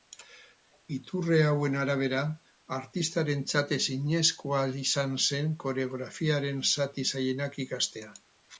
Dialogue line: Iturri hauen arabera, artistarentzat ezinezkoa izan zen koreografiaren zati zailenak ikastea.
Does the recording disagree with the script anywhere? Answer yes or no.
no